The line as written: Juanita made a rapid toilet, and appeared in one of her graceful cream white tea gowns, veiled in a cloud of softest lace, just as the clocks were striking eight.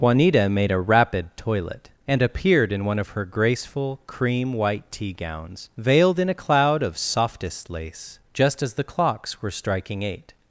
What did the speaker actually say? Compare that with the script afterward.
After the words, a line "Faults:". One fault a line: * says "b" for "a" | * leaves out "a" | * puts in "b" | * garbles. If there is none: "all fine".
Juanita made a rapid toilet, and appeared in one of her graceful cream white tea gowns, veiled in a cloud of softest lace, just as the clocks were striking eight.
Faults:
all fine